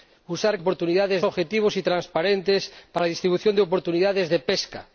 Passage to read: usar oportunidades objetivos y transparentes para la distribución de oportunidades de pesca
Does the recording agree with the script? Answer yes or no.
yes